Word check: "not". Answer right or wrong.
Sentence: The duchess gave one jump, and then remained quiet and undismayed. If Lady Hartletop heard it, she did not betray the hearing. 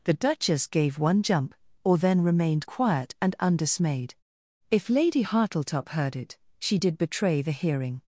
wrong